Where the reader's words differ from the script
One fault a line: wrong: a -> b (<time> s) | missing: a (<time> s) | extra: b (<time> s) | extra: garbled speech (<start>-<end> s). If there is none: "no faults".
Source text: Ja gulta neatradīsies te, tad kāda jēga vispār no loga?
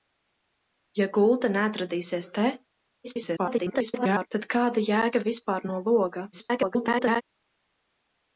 extra: garbled speech (3.0-4.3 s)
extra: garbled speech (6.3-7.2 s)